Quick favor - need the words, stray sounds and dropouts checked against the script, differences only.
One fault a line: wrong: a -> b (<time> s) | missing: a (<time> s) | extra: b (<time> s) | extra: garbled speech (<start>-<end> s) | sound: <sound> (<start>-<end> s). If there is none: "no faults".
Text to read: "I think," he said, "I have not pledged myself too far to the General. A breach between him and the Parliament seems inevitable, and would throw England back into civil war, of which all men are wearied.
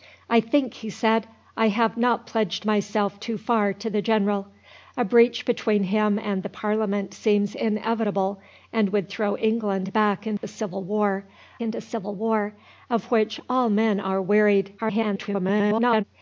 sound: dropout (10.4-10.4 s)
extra: into civil war (11.6 s)
extra: garbled speech (14.8-16.0 s)